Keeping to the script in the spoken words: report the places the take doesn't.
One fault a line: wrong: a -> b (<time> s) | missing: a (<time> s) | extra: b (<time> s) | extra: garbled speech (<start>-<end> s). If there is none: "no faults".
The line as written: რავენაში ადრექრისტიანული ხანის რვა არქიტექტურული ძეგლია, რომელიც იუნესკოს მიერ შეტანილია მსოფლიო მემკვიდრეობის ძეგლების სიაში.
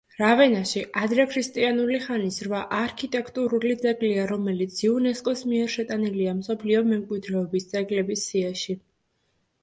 no faults